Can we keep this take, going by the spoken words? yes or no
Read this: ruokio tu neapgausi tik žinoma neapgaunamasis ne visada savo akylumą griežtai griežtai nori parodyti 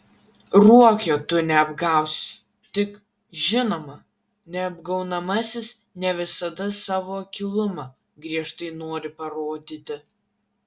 no